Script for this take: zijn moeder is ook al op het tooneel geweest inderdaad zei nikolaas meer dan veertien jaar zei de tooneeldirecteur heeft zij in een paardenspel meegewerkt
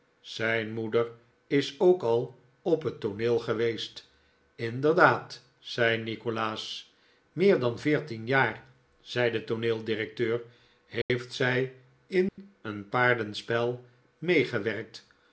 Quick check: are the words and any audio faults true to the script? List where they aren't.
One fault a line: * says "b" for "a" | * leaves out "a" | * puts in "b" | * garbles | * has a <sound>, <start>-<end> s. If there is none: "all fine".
* has a dropout, 11.0-11.1 s
* has a dropout, 12.3-12.4 s